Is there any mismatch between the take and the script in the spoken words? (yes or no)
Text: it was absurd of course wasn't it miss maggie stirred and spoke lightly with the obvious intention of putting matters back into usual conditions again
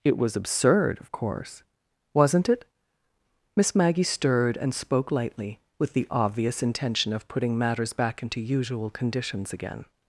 no